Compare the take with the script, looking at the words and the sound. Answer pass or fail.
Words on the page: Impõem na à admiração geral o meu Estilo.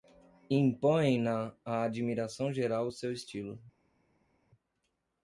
fail